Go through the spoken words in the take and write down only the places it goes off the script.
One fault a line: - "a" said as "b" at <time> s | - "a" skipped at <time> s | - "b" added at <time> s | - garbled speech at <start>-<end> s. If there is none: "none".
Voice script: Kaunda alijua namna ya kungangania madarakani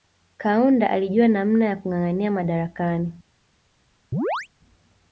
none